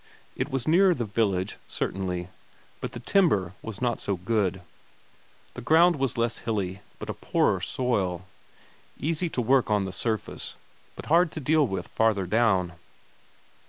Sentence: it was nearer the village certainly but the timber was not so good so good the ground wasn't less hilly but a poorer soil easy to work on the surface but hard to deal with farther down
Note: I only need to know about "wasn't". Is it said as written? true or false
false